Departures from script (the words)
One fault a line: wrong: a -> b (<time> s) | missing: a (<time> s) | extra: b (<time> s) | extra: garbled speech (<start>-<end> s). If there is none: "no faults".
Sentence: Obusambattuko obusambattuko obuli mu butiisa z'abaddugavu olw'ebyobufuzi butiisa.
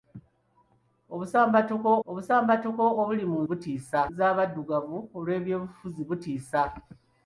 no faults